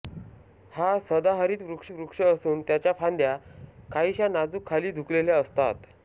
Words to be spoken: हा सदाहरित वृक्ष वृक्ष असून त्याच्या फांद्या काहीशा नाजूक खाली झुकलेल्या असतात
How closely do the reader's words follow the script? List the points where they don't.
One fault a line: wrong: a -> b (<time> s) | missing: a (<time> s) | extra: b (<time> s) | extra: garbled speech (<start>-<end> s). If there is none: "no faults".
no faults